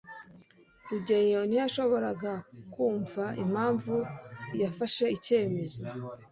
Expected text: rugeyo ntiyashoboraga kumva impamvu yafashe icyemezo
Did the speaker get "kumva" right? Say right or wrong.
right